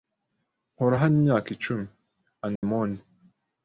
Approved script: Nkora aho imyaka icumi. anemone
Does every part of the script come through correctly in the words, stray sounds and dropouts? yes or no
no